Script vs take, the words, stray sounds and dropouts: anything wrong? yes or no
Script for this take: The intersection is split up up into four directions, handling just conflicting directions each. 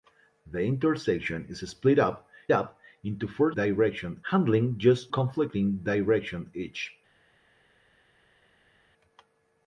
no